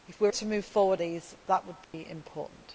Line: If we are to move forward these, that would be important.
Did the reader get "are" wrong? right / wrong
right